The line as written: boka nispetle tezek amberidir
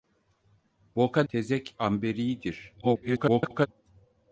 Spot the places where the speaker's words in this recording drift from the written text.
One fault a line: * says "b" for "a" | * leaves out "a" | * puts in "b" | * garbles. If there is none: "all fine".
* leaves out "nispetle"
* garbles